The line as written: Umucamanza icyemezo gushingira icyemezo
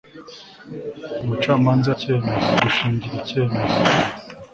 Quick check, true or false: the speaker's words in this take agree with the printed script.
true